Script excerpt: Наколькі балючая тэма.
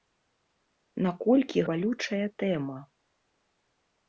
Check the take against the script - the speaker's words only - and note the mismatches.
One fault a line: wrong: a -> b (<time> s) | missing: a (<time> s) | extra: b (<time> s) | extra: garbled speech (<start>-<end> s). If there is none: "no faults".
no faults